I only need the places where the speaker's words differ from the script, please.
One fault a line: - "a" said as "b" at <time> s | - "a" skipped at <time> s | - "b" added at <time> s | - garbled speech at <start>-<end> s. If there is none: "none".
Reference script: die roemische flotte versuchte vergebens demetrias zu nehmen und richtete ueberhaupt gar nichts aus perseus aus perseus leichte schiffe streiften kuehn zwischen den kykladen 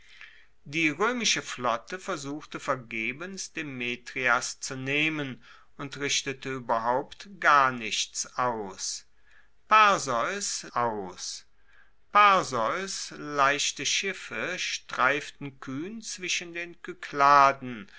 none